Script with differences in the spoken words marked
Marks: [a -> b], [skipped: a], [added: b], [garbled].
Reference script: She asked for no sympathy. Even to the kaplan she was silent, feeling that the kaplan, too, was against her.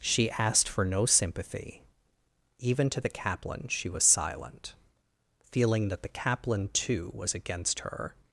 She asked for no sympathy. Even to the kaplan she was silent, feeling that the kaplan, too, was against her.